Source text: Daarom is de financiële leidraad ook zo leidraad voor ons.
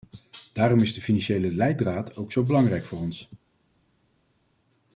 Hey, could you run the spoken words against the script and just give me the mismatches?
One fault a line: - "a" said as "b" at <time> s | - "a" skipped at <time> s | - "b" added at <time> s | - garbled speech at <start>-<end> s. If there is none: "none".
- "leidraad" said as "belangrijk" at 2.4 s